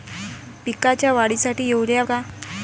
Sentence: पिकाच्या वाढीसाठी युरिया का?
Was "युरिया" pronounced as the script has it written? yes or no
yes